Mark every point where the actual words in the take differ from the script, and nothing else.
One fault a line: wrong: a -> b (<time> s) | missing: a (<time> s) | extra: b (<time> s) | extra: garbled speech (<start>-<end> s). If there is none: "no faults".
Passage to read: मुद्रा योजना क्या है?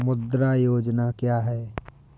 no faults